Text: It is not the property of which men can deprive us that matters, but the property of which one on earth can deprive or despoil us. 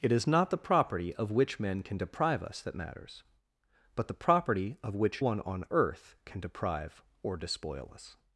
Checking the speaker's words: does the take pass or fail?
pass